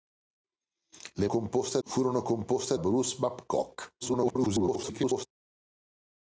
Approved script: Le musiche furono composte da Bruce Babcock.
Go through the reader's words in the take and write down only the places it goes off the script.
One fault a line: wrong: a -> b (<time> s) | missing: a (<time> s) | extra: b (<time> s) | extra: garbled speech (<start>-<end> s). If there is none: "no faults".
wrong: musiche -> composte (1.3 s)
missing: da (2.7 s)
extra: garbled speech (4.0-5.3 s)